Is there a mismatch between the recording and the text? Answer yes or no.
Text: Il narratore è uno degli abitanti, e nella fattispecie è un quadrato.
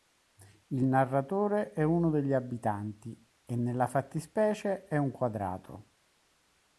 no